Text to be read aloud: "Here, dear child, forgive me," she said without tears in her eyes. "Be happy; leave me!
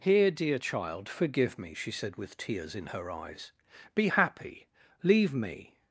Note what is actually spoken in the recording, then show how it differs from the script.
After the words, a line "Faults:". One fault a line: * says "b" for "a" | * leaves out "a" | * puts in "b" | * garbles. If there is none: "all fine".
"Here, dear child, forgive me," she said with tears in her eyes. "Be happy; leave me!
Faults:
* says "with" for "without"